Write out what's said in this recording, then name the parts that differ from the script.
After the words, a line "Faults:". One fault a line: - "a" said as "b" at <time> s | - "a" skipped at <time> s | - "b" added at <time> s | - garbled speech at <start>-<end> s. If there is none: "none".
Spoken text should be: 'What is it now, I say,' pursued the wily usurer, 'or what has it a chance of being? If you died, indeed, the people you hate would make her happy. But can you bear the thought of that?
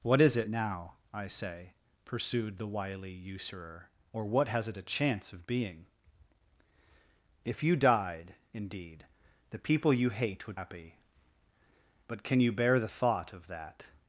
'What is it now, I say,' pursued the wily usurer, 'or what has it a chance of being? If you died, indeed, the people you hate would happy. But can you bear the thought of that?
Faults:
- "make her" skipped at 10.6 s